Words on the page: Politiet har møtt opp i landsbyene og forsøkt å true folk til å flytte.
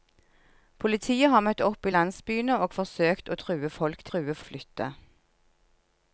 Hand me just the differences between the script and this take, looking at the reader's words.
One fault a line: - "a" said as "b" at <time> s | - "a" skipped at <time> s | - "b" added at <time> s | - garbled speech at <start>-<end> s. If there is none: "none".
- "til" said as "true" at 4.1 s